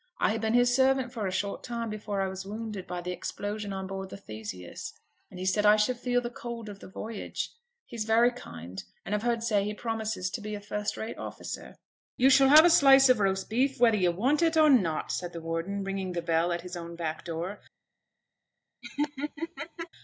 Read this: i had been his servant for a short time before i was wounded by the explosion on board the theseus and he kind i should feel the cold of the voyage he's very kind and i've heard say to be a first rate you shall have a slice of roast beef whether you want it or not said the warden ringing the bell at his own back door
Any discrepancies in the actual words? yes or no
yes